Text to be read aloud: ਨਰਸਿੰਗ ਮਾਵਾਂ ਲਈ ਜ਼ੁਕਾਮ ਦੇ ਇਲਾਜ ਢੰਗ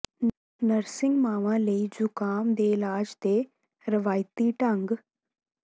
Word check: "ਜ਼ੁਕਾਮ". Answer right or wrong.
right